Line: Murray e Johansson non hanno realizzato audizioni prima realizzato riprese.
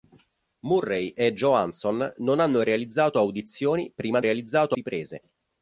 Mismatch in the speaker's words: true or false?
false